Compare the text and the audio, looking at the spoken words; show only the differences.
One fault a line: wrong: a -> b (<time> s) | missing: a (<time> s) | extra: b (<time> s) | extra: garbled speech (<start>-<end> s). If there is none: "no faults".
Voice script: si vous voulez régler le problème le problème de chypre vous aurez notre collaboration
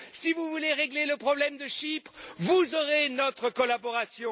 missing: le problème (1.6 s)